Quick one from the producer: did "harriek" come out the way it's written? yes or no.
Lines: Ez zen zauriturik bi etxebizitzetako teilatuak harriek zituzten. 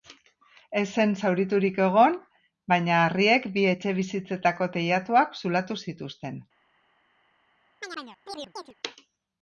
no